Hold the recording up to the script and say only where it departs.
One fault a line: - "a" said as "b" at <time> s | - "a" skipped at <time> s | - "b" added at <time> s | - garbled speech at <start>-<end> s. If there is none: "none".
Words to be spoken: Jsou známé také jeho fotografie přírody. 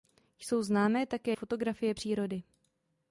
- "jeho" skipped at 1.4 s